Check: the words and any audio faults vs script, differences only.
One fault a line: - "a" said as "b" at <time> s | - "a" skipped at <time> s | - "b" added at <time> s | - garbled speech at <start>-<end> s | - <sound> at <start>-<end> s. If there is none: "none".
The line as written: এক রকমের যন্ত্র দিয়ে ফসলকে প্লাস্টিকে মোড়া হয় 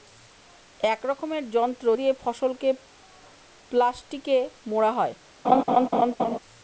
- laugh at 5.4-6.4 s